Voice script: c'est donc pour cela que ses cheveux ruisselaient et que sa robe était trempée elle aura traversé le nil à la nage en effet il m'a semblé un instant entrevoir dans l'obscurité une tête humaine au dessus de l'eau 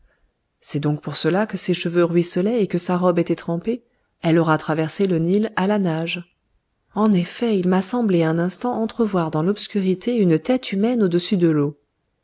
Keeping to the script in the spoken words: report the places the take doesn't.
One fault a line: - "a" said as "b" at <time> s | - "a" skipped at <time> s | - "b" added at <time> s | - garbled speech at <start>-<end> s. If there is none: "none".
none